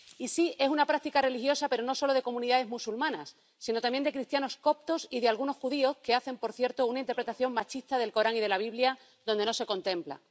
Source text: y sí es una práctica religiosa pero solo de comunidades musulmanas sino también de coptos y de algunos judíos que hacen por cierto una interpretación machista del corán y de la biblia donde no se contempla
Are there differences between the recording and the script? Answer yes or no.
yes